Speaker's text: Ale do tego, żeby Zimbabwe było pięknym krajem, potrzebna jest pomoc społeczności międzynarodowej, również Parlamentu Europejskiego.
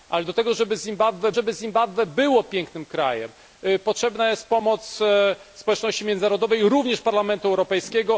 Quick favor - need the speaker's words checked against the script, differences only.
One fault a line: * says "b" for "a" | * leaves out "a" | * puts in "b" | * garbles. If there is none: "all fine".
* puts in "żeby Zimbabwe"